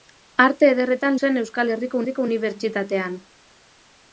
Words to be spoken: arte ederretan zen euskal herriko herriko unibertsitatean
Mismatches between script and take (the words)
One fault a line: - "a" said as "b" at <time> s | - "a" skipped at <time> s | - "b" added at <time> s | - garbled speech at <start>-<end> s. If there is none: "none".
none